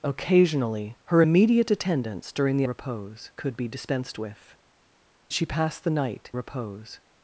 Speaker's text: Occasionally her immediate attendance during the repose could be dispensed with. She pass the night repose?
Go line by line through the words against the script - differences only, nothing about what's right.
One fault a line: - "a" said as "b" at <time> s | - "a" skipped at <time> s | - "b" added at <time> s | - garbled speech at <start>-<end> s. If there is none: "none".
none